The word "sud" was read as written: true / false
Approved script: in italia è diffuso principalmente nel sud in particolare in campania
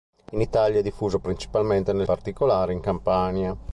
false